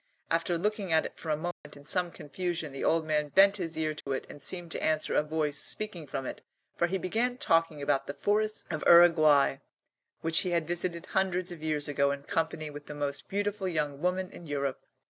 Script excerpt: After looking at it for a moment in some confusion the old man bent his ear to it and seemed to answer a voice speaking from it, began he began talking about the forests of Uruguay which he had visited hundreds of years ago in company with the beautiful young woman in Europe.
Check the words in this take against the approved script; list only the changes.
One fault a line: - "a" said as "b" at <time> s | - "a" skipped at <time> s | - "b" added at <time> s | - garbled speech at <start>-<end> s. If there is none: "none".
- "began" said as "for" at 6.7 s
- "most" added at 12.9 s